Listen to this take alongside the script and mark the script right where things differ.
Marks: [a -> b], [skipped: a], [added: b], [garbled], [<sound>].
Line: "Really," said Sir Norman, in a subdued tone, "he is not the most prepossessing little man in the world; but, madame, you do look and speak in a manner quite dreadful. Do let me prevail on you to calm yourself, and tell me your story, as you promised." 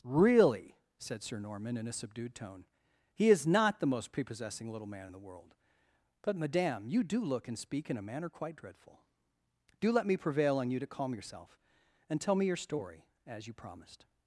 "Really," said Sir Norman, in a subdued tone, "he is not the most prepossessing little man in the world; but, madame, you do look and speak in a manner quite dreadful. Do let me prevail on you to calm yourself, and tell me your story, as you promised."